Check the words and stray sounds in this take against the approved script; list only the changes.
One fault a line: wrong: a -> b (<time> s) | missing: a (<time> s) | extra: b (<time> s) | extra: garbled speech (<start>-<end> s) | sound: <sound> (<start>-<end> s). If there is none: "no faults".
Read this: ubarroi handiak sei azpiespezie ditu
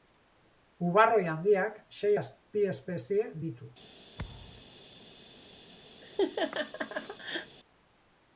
sound: thud (4.2-4.7 s)
sound: laugh (6.0-7.6 s)